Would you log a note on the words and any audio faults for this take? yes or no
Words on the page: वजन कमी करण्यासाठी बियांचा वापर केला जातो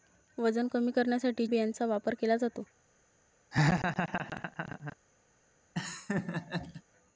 yes